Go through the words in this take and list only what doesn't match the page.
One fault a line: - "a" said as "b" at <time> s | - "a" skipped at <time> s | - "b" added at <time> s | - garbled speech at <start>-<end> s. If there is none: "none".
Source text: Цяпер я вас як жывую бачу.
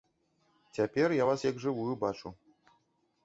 none